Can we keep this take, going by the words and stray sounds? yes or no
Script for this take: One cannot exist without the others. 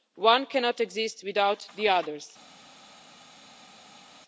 yes